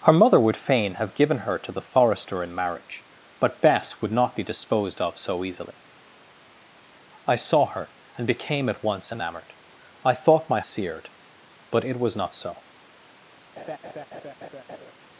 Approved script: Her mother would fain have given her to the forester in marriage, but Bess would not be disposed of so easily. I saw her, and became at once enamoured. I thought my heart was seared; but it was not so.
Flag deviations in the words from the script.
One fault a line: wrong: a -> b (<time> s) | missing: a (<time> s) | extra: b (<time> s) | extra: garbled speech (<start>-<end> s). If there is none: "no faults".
missing: heart was (10.6 s)